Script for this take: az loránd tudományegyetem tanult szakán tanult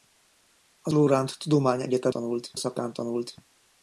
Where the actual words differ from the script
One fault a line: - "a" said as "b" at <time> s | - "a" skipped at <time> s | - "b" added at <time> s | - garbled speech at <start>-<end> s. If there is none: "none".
none